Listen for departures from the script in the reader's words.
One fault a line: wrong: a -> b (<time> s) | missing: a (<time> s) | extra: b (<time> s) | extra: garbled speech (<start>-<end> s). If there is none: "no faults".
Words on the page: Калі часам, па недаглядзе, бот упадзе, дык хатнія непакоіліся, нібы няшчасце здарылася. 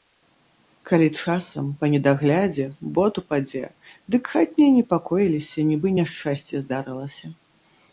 no faults